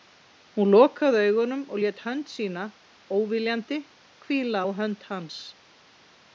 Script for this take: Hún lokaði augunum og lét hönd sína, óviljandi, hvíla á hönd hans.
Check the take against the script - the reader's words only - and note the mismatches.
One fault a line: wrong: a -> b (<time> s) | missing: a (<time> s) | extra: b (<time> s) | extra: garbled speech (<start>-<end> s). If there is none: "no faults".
no faults